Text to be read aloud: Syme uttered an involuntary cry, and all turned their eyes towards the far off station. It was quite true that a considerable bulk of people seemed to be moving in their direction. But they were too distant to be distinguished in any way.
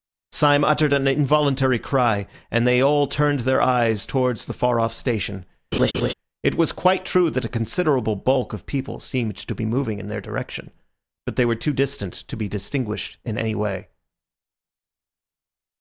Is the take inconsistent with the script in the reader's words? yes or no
yes